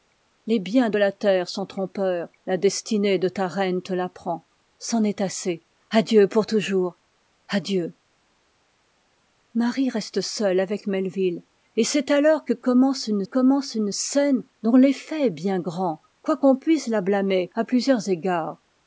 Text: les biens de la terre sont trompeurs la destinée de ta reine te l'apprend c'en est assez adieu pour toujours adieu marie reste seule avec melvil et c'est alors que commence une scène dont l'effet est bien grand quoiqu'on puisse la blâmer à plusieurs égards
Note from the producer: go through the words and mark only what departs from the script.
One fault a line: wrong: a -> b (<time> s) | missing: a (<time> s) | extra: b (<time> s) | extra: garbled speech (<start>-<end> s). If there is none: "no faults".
extra: commence une (13.2 s)